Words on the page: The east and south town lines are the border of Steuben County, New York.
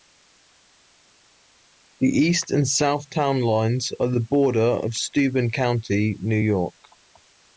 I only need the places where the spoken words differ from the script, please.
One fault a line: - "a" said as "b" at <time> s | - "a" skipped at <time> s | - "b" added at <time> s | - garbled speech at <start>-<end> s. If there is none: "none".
none